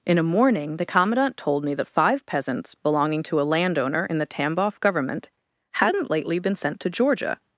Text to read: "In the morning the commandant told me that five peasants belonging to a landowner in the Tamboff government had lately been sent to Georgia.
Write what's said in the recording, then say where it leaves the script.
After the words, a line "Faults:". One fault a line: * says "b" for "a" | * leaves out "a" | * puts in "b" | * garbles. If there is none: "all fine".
"In a morning the commandant told me that five peasants belonging to a landowner in the Tamboff government hadn't lately been sent to Georgia.
Faults:
* says "a" for "the"
* says "hadn't" for "had"